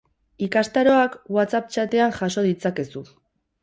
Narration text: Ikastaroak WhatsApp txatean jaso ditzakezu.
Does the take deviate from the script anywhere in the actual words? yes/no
no